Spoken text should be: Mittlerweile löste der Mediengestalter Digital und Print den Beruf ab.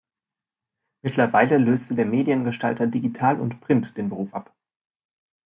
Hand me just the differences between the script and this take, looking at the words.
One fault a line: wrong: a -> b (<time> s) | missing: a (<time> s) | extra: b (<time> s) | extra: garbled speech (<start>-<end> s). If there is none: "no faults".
no faults